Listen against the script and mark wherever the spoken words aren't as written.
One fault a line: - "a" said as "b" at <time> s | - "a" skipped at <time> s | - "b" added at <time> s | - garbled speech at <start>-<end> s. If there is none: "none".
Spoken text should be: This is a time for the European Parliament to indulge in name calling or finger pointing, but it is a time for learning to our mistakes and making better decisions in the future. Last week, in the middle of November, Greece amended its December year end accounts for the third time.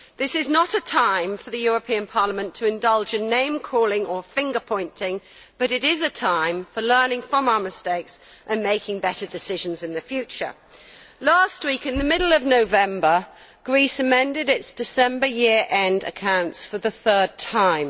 - "not" added at 0.5 s
- "to" said as "from" at 7.2 s